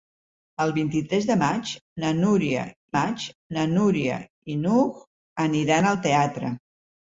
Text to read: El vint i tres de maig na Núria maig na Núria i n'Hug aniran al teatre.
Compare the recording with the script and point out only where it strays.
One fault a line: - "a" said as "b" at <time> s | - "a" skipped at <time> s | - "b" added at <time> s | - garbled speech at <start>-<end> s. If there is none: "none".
none